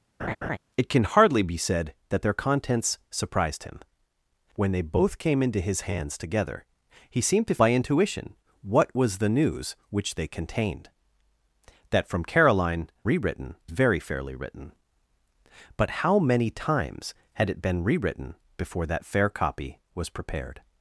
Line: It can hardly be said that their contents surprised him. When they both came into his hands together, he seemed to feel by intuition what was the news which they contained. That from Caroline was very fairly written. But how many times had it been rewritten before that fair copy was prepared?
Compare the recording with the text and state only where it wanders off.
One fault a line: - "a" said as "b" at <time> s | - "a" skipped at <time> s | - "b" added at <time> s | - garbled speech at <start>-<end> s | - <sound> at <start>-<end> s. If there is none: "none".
- laugh at 0.2-0.6 s
- "feel" skipped at 7.6 s
- "was" said as "rewritten" at 13.0 s